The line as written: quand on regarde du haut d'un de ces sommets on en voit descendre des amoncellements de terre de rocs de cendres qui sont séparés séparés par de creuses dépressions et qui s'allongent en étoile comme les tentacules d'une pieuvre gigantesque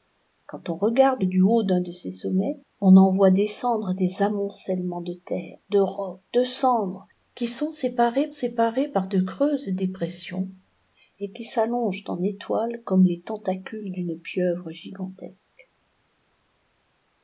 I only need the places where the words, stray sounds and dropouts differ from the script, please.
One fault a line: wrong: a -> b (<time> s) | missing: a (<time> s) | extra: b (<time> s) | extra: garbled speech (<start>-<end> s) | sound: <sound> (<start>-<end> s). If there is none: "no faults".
no faults